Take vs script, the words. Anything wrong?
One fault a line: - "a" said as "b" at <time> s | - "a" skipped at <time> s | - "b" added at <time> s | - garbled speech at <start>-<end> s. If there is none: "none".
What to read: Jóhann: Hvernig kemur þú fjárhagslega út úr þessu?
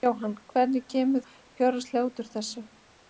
- "þú" skipped at 1.2 s